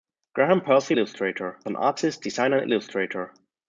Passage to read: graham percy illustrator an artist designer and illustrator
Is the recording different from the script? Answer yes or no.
no